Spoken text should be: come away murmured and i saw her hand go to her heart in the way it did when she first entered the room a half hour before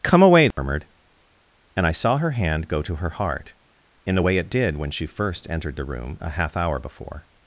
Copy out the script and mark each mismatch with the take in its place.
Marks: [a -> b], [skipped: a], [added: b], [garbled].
come away murmured and i saw her hand go to her heart in the way it did when she first entered the room a half hour before